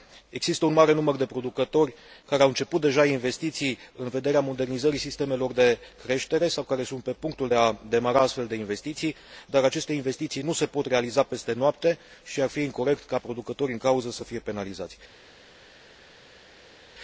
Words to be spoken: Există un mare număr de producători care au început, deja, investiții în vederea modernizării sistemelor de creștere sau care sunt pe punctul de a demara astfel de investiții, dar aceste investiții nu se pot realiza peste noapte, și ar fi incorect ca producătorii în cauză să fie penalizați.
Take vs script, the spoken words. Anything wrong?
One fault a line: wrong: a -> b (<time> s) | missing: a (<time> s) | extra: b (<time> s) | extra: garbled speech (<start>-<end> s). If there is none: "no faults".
no faults